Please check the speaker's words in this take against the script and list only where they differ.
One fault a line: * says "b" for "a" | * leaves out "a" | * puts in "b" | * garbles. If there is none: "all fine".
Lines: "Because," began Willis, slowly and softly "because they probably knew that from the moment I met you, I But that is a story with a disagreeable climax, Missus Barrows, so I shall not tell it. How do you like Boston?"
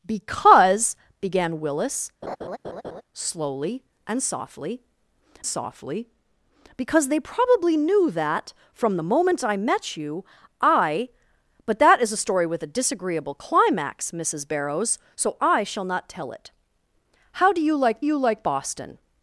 * puts in "softly"
* puts in "you like"